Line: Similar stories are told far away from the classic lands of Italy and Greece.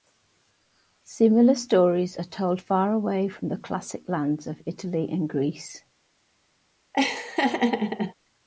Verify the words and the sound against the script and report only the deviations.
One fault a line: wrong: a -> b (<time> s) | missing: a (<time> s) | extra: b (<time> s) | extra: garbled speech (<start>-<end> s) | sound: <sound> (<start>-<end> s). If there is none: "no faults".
sound: laugh (6.9-8.1 s)